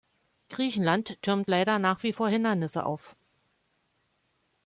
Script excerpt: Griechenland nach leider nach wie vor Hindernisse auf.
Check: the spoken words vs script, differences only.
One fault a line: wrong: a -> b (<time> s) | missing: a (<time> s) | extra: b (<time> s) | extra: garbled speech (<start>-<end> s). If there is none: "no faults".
wrong: nach -> türmt (1.2 s)